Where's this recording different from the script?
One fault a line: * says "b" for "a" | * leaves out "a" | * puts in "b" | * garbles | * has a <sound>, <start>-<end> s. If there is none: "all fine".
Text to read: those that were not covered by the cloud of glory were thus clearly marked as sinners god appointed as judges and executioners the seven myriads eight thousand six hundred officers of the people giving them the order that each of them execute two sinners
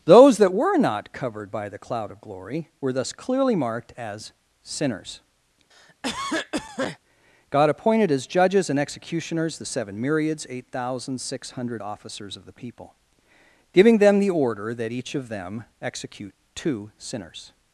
* has a cough, 5.7-7.0 s